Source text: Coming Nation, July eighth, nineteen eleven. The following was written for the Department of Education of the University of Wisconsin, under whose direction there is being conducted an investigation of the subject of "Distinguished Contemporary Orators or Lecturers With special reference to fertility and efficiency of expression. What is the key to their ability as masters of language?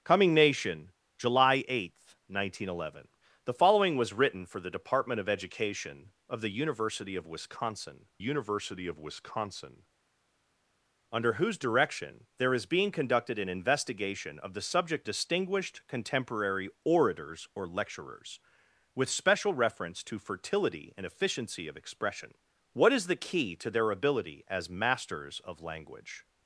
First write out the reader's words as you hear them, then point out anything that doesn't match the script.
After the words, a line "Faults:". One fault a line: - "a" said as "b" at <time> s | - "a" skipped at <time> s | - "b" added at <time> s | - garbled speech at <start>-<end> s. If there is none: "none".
Coming Nation, July eighth, nineteen eleven. The following was written for the Department of Education of the University of Wisconsin University of Wisconsin, under whose direction there is being conducted an investigation of the subject "Distinguished Contemporary Orators or Lecturers With special reference to fertility and efficiency of expression. What is the key to their ability as masters of language?
Faults:
- "University of Wisconsin" added at 8.2 s
- "of" skipped at 15.1 s